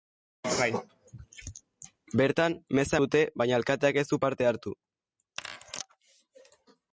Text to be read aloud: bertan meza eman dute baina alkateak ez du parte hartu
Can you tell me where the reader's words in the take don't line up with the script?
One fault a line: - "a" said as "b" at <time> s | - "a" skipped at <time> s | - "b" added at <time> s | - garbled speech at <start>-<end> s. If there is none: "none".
- "eman" skipped at 3.0 s